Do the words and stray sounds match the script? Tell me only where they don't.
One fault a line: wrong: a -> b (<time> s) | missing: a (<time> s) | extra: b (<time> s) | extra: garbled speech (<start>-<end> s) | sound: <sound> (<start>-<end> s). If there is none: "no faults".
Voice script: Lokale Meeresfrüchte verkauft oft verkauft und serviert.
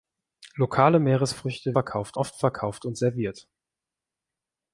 no faults